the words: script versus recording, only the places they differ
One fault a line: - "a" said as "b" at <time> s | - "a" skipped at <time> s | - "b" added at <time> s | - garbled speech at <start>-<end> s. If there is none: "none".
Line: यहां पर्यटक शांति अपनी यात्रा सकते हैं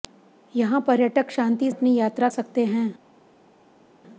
none